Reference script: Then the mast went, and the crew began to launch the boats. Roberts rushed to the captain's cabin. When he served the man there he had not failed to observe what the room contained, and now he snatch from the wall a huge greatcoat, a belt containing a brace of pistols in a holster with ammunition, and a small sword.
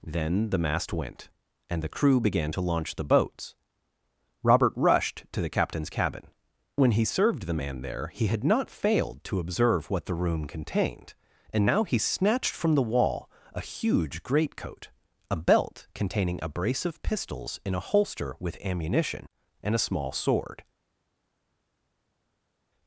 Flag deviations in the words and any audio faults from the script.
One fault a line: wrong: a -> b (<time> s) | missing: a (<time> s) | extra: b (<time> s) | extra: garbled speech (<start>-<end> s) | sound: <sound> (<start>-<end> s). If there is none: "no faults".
wrong: Roberts -> Robert (4.4 s)
wrong: snatch -> snatched (12.0 s)